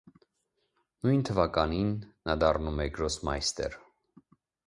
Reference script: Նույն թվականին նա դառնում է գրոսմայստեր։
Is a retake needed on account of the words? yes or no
no